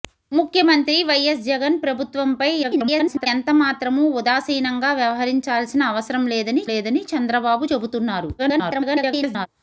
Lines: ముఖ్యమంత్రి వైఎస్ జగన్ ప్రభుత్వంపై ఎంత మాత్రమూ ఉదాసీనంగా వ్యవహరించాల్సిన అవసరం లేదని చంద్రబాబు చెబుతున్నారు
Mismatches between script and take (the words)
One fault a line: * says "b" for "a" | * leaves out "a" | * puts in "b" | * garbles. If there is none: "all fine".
* garbles
* puts in "లేదని"
* garbles